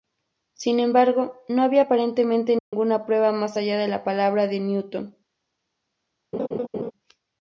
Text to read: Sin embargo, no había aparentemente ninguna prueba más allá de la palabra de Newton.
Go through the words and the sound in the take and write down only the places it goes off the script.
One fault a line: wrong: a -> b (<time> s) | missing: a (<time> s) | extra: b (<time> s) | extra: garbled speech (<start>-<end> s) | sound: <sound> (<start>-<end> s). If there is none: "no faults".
sound: dropout (2.6-2.7 s)
sound: laugh (6.3-6.9 s)